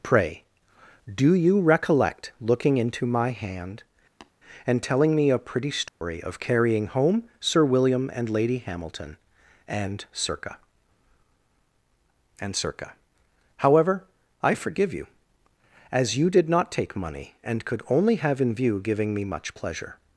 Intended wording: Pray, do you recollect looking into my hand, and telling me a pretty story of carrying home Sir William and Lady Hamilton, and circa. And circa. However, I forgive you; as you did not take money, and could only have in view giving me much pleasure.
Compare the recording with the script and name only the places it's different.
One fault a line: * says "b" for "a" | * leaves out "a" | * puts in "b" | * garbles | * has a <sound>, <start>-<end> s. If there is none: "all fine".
* has a tap, 4.2-4.3 s
* has a dropout, 5.9-6.0 s